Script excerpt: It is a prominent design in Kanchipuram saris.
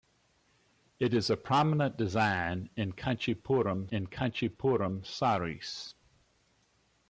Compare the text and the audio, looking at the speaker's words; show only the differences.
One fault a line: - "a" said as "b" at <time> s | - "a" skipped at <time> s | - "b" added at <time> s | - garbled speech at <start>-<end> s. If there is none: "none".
- "in Kanchipuram" added at 3.9 s